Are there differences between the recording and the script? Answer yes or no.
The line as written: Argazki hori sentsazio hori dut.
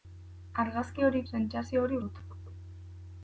no